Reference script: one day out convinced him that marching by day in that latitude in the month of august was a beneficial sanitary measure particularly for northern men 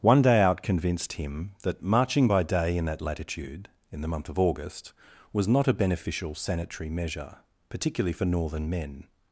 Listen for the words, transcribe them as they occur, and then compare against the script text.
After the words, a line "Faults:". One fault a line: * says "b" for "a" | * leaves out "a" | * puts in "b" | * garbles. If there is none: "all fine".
one day out convinced him that marching by day in that latitude in the month of august was not a beneficial sanitary measure particularly for northern men
Faults:
* puts in "not"